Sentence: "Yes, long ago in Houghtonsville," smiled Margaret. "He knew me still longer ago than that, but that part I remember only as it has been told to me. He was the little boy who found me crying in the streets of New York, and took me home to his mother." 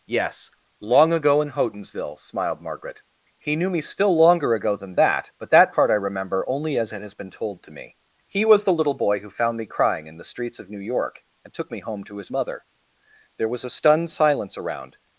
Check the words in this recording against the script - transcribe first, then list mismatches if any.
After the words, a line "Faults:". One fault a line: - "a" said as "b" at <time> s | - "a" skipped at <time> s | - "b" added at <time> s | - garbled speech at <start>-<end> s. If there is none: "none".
"Yes, long ago in Houghtonsville," smiled Margaret. "He knew me still longer ago than that, but that part I remember only as it has been told to me. He was the little boy who found me crying in the streets of New York, and took me home to his mother." There was a stunned silence around
Faults:
- "There was a stunned silence around" added at 13.4 s